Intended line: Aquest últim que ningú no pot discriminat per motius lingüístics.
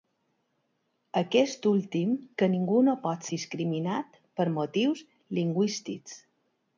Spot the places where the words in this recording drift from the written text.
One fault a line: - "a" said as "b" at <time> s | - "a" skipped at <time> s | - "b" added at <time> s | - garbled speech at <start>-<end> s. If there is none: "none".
none